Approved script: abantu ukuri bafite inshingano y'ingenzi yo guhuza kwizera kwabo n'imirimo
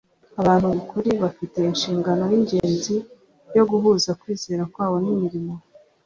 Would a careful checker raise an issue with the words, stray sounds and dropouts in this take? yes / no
yes